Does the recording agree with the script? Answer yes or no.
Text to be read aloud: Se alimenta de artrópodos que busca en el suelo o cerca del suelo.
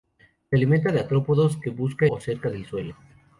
no